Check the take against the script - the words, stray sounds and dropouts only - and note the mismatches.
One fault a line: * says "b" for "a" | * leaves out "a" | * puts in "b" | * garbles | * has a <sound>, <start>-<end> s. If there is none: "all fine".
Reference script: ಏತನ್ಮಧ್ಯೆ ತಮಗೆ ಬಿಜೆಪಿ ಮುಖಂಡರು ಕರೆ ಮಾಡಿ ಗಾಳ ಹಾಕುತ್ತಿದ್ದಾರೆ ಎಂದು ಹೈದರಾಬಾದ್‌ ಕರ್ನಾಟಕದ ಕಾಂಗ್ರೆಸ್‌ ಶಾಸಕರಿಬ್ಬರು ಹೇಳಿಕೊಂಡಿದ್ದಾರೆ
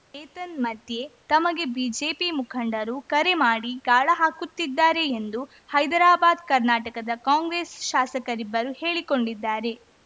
all fine